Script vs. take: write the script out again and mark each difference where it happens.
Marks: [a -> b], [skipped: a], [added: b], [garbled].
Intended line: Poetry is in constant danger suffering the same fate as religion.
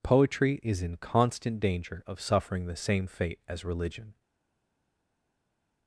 Poetry is in constant danger [added: of] suffering the same fate as religion.